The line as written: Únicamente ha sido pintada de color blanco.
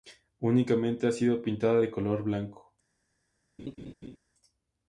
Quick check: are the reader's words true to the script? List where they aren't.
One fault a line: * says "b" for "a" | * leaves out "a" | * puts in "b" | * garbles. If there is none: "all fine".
all fine